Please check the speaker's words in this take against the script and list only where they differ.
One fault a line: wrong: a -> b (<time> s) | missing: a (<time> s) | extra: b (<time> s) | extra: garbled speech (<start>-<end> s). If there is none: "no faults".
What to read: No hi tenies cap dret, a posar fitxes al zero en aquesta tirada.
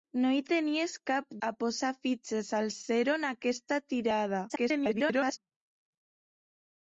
missing: dret (1.3 s)
extra: garbled speech (4.5-5.4 s)